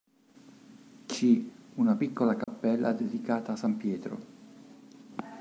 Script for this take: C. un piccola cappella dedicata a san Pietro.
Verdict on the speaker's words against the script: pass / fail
fail